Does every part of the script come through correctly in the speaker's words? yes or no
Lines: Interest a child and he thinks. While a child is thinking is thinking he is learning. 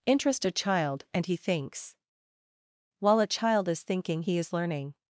no